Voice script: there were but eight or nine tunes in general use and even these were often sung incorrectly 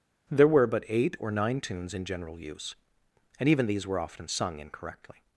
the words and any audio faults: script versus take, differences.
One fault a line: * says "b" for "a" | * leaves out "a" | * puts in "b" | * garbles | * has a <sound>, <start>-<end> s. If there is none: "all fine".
all fine